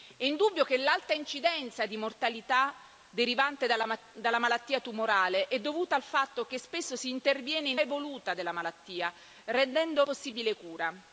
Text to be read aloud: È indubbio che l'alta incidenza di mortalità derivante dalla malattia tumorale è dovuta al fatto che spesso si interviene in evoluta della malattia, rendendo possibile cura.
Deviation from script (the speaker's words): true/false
false